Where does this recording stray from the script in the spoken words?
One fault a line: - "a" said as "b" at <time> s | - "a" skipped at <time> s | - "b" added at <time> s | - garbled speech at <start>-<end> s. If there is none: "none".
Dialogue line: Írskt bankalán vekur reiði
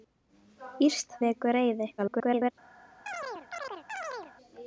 - "bankalán" skipped at 1.1 s
- garbled speech at 2.0-2.5 s